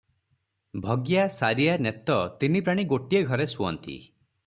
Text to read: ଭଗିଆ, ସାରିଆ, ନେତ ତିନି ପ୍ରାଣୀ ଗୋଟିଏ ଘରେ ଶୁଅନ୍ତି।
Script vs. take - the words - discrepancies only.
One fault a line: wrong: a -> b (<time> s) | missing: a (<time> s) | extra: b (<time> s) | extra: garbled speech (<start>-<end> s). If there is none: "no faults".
no faults